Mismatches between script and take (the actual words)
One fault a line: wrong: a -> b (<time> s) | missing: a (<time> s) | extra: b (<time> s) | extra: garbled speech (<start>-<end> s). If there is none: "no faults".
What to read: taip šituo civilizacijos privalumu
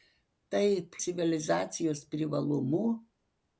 missing: šituo (0.9 s)